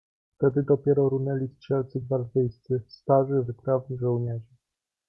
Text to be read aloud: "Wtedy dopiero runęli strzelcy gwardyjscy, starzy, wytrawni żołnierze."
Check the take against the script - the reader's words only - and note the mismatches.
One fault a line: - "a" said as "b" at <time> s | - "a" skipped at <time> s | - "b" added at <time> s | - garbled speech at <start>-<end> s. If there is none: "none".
none